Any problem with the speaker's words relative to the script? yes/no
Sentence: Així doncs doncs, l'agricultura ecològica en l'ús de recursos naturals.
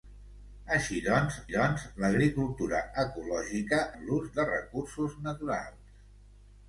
no